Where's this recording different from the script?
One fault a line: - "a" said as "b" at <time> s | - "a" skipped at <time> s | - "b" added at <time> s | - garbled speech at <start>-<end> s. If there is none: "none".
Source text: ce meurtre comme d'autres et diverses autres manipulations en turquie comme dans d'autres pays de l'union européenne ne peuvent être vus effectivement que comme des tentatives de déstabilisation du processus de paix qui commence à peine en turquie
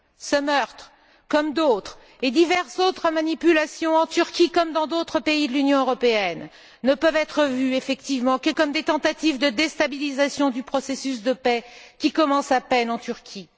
none